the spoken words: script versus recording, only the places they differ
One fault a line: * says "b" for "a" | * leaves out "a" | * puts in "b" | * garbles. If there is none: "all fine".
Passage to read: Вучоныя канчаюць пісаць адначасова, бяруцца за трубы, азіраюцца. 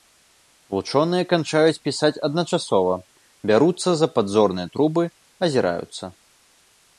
* puts in "падзорныя"